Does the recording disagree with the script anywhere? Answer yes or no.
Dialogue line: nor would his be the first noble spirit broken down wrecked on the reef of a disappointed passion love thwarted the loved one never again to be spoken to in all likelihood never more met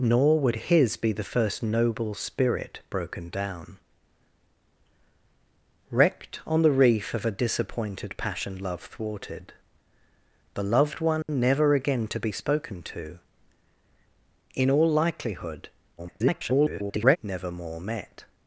yes